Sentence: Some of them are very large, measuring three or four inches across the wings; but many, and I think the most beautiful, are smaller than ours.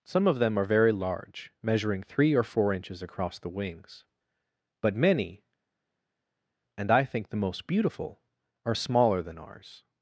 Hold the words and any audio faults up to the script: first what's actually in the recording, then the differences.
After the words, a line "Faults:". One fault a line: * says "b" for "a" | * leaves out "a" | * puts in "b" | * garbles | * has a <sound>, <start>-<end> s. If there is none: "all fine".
Some of them are very large, measuring three or four inches across the wings; but many, and I think the most beautiful, are smaller than ours.
Faults:
all fine